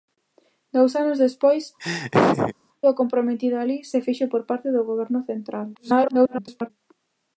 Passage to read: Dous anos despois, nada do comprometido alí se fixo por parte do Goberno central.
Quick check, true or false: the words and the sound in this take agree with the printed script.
false